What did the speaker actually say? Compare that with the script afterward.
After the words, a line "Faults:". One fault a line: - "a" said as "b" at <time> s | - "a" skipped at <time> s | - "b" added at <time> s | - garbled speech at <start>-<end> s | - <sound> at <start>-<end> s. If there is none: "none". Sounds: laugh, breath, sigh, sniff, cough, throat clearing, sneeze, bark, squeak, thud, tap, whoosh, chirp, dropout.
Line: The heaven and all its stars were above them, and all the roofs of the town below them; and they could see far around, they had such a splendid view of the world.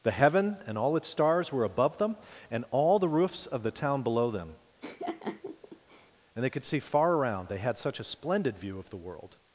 The heaven and all its stars were above them, and all the roofs of the town below them; and they could see far around, they had such a splendid view of the world.
Faults:
- laugh at 4.8-6.1 s